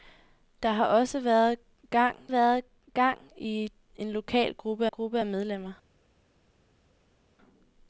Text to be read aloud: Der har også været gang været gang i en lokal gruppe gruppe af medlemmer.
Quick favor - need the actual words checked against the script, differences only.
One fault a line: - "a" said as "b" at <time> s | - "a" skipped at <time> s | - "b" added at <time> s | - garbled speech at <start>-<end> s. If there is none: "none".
none